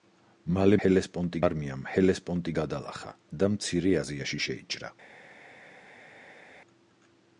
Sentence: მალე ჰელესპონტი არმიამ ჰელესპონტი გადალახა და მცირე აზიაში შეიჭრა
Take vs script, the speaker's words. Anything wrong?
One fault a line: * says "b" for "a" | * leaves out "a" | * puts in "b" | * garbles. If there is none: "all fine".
all fine